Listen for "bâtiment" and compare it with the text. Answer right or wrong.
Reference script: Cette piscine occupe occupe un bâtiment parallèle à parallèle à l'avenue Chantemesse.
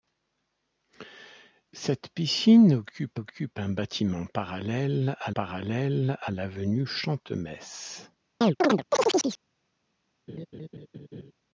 right